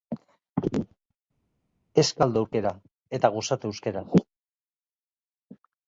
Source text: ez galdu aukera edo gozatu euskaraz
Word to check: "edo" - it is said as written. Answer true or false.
false